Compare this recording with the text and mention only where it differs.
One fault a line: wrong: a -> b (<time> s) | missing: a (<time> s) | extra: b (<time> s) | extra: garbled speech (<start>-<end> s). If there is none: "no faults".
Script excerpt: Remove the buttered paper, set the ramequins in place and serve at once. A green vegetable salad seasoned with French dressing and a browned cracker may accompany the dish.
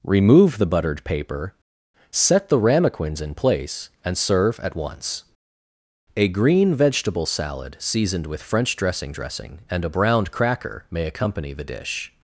extra: dressing (9.1 s)